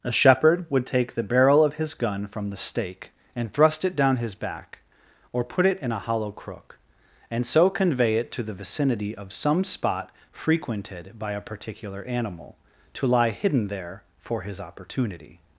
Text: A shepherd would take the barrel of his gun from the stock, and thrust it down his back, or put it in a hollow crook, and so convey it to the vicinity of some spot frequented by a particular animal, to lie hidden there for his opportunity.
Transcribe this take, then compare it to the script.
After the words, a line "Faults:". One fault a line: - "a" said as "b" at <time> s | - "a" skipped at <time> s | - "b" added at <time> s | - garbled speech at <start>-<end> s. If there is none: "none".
A shepherd would take the barrel of his gun from the stake, and thrust it down his back, or put it in a hollow crook, and so convey it to the vicinity of some spot frequented by a particular animal, to lie hidden there for his opportunity.
Faults:
- "stock" said as "stake" at 2.6 s